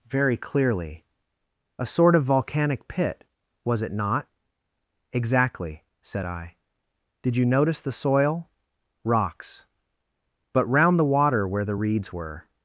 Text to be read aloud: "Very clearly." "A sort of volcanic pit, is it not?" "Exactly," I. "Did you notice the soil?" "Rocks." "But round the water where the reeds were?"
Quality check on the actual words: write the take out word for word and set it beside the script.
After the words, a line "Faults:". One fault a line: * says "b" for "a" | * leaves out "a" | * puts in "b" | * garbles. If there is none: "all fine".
"Very clearly." "A sort of volcanic pit, was it not?" "Exactly," said I. "Did you notice the soil?" "Rocks." "But round the water where the reeds were?"
Faults:
* says "was" for "is"
* puts in "said"